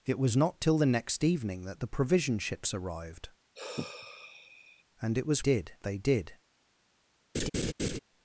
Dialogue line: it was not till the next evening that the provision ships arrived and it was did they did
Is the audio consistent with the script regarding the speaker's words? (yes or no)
yes